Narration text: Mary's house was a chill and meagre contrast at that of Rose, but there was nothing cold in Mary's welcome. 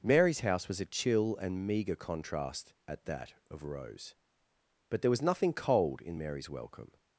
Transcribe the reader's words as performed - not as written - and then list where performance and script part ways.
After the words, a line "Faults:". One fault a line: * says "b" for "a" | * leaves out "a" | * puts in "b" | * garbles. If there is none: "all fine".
Mary's house was a chill and meagre contrast at that of Rose, but there was nothing cold in Mary's welcome.
Faults:
all fine